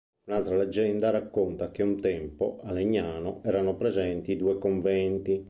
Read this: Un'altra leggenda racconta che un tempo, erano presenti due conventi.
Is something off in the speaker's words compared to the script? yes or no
yes